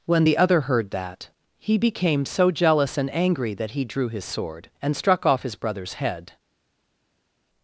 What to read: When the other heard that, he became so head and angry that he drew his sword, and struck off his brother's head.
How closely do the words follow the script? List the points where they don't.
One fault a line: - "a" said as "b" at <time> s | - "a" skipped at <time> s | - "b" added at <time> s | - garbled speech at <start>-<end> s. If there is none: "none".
- "head" said as "jealous" at 2.5 s